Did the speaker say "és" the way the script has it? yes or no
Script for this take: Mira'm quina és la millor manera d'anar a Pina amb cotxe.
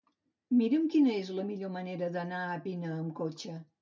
yes